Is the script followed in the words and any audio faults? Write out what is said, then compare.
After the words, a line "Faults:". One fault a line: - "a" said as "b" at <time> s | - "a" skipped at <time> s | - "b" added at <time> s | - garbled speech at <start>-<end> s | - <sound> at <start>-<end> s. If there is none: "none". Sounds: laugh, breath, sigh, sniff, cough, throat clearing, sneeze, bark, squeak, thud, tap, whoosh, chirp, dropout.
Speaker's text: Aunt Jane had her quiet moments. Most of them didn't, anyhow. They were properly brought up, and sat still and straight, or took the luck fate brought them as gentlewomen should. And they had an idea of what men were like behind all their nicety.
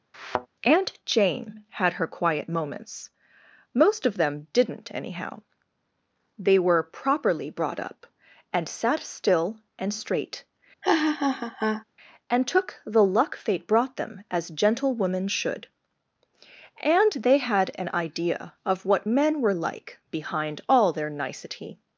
Aunt Jane had her quiet moments. Most of them didn't, anyhow. They were properly brought up, and sat still and straight, and took the luck fate brought them as gentlewomen should. And they had an idea of what men were like behind all their nicety.
Faults:
- thud at 0.1-0.5 s
- laugh at 10.8-11.8 s
- "or" said as "and" at 12.3 s